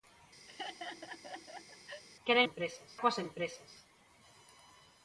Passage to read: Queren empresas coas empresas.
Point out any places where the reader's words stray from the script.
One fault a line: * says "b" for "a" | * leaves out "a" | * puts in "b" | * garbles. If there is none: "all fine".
all fine